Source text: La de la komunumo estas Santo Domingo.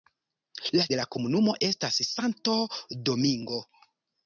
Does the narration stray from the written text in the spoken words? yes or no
no